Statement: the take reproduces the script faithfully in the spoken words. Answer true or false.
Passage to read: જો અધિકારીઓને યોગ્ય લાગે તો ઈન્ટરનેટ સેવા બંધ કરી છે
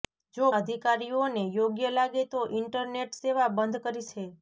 true